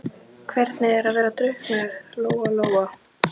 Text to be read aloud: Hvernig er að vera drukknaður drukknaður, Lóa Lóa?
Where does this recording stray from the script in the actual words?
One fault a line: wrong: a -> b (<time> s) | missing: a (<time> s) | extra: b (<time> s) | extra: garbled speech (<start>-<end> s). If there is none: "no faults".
missing: drukknaður (2.0 s)